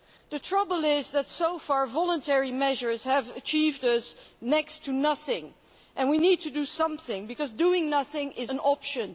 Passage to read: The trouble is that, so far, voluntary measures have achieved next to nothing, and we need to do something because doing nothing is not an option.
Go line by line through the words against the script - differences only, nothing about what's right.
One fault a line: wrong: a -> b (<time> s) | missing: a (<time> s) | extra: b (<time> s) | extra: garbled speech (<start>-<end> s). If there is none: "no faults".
missing: not (8.5 s)